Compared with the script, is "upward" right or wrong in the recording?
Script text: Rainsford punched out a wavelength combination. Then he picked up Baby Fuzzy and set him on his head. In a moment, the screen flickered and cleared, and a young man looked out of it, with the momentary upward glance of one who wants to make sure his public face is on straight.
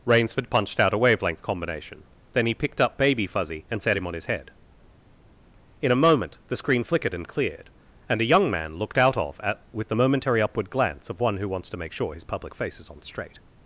right